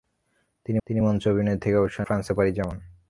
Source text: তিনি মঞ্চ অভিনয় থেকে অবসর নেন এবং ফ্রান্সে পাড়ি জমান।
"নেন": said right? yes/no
no